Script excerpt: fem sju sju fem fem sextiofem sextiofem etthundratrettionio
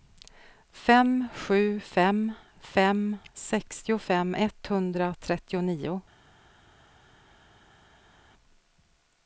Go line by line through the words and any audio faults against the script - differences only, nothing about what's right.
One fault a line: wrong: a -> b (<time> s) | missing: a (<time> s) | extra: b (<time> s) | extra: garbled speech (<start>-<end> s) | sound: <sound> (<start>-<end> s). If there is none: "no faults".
missing: sju (1.8 s)
missing: sextiofem (4.3 s)